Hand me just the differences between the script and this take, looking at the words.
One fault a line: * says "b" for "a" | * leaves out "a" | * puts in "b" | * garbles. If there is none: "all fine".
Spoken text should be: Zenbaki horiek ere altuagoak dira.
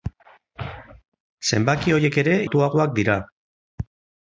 all fine